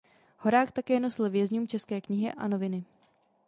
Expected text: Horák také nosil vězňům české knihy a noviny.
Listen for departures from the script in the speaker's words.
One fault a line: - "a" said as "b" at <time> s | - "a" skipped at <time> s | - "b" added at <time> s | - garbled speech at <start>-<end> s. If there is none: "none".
none